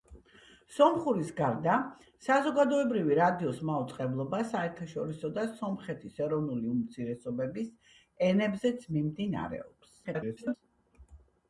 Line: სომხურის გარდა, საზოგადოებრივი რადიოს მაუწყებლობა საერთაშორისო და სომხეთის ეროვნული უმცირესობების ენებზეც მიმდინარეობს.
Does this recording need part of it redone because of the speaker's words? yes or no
yes